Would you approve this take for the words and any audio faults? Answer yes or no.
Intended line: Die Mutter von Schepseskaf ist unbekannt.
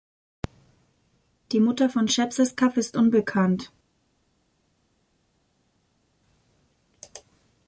yes